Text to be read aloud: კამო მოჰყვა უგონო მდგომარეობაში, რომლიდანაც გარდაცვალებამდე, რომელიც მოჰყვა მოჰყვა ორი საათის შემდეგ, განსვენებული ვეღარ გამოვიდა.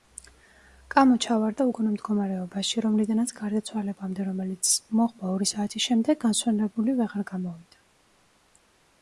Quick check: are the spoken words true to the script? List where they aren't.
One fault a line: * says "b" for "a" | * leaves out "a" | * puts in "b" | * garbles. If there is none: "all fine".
* says "ჩავარდა" for "მოჰყვა"
* leaves out "მოჰყვა"